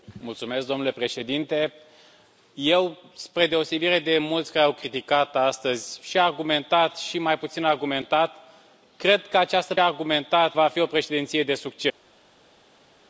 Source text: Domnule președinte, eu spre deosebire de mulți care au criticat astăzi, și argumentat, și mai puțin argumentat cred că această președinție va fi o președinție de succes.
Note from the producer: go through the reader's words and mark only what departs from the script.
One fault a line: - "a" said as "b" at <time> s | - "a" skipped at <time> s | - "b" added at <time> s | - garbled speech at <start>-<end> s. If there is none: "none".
- "președinție" said as "argumentat" at 9.8 s